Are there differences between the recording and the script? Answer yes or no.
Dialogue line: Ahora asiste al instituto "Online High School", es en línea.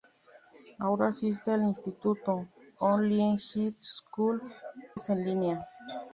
no